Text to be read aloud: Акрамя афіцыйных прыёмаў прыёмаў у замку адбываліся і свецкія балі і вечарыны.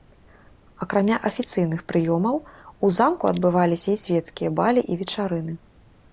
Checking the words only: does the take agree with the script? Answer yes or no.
no